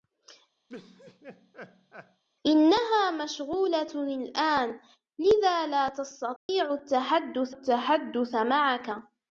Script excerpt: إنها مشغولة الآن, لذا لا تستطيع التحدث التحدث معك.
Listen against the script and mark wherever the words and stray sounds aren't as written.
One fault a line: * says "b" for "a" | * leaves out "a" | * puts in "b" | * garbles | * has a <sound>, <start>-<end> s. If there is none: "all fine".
* has a laugh, 0.7-2.2 s
* has a dropout, 6.4-6.5 s